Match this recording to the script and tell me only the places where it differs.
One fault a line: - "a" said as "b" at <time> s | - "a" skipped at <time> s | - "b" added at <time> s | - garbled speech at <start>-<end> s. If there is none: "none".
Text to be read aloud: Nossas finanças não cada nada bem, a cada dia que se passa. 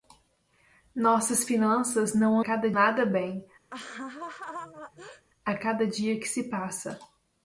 none